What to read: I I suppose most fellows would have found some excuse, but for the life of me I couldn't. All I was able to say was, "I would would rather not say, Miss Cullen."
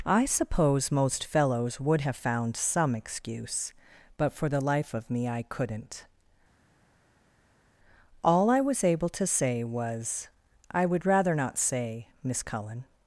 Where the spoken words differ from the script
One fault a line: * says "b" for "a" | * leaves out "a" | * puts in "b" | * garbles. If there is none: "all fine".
* leaves out "I"
* leaves out "would"